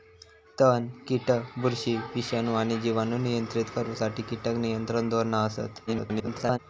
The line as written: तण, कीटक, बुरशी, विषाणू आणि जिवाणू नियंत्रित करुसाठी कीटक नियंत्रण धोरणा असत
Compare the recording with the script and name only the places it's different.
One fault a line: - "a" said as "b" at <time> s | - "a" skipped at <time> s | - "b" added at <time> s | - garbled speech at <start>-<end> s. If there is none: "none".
- garbled speech at 5.9-6.6 s